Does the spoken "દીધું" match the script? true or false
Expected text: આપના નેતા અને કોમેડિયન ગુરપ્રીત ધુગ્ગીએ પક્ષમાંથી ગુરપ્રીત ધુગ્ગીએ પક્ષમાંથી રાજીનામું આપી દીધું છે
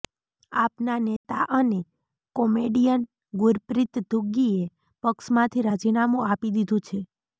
true